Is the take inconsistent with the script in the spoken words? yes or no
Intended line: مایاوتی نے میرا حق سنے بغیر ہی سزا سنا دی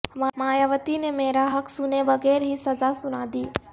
no